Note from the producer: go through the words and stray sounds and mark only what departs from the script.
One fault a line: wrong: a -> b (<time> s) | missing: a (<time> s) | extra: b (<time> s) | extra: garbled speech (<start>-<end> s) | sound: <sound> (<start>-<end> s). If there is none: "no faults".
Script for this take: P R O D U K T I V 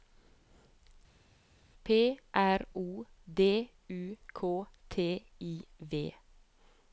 no faults